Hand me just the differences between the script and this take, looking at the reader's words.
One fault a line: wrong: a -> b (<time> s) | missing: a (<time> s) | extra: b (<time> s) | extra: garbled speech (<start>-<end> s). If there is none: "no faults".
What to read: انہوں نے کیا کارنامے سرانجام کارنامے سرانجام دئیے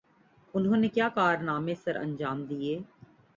missing: کارنامے سرانجام (2.4 s)